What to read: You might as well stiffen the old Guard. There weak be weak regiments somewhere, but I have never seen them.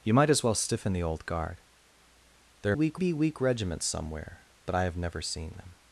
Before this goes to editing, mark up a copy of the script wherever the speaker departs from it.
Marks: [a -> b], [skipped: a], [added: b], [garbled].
You might as well stiffen the old Guard. There weak be weak regiments somewhere, but I have never seen them.